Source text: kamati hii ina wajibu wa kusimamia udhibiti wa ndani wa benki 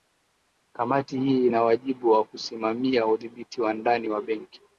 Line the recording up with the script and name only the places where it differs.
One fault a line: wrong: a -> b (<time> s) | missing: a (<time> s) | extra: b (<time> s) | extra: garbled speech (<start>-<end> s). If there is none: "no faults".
no faults